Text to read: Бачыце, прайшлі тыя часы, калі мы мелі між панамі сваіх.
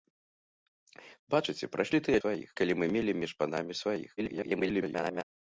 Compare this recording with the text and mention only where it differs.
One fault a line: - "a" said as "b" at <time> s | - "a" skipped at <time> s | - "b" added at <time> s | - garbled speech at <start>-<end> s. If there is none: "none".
- "часы" said as "сваіх" at 2.2 s
- garbled speech at 4.2-5.2 s